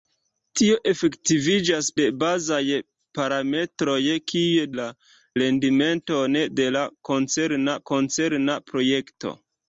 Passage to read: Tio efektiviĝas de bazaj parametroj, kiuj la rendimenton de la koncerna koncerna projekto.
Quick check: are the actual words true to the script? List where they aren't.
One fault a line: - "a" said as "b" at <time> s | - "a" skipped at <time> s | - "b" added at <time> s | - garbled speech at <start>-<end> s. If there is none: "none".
none